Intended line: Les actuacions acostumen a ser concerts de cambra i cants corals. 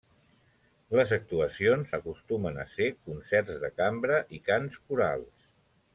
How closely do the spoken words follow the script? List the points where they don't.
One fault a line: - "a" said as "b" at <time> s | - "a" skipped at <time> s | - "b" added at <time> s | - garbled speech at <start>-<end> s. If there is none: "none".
none